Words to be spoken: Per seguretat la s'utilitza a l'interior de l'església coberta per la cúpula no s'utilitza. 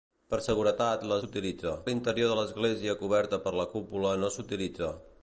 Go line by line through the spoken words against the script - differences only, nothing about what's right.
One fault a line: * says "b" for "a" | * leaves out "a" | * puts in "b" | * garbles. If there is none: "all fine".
all fine